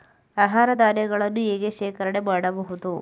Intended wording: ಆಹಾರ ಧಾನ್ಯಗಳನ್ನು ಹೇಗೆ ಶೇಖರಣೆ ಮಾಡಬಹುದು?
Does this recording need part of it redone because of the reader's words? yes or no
no